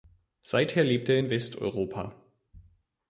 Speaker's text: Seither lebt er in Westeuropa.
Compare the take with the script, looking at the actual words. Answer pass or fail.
pass